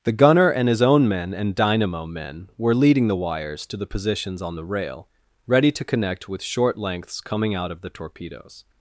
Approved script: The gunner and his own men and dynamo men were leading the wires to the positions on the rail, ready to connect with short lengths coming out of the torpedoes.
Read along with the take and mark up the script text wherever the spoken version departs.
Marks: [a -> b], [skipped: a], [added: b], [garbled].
The gunner and his own men and dynamo men were leading the wires to the positions on the rail, ready to connect with short lengths coming out of the torpedoes.